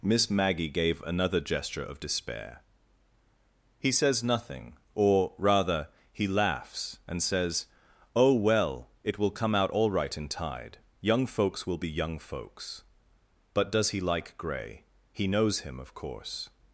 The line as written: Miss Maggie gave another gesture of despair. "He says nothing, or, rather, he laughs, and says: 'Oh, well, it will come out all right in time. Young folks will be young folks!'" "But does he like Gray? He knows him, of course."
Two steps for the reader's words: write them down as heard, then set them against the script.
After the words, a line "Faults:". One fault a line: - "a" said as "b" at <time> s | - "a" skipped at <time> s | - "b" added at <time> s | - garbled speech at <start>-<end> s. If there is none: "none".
Miss Maggie gave another gesture of despair. "He says nothing, or, rather, he laughs, and says: 'Oh, well, it will come out all right in tide. Young folks will be young folks!'" "But does he like Gray? He knows him, of course."
Faults:
- "time" said as "tide" at 10.3 s